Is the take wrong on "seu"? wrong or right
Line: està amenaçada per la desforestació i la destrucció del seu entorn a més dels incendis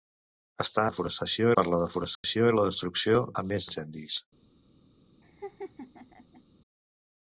wrong